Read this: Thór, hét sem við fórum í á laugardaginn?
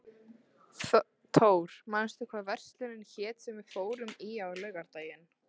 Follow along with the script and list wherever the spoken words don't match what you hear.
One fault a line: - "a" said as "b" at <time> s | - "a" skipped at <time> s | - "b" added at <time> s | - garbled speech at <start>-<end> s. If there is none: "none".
- "manstu hvað verslunin" added at 2.0 s